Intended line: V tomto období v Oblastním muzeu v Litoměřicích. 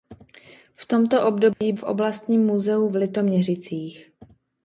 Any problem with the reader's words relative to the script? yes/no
no